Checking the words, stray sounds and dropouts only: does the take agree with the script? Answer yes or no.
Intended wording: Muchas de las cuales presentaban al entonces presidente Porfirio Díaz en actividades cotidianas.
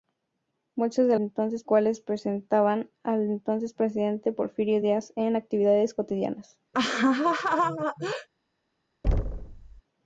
no